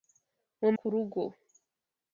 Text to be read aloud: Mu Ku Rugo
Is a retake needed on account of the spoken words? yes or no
no